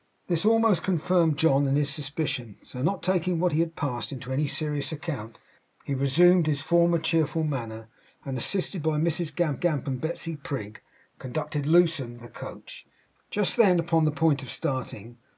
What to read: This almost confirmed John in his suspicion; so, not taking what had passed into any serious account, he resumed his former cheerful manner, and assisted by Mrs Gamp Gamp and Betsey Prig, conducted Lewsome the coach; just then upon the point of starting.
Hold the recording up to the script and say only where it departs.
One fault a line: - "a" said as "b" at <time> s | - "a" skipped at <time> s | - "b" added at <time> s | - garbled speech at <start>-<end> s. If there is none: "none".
none